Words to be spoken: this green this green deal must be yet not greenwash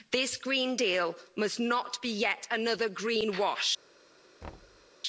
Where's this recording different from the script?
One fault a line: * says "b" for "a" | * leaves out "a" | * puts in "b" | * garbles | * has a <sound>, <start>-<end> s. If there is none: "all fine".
* leaves out "this green"
* puts in "not"
* says "another" for "not"
* has a thud, 4.4-4.9 s